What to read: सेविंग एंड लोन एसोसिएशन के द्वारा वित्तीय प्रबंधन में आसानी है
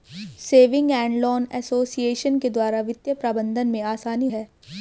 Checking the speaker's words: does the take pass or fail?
pass